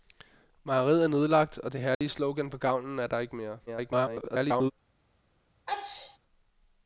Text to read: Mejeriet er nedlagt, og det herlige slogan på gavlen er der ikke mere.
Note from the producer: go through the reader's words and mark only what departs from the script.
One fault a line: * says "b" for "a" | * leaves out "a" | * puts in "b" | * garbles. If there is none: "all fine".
* garbles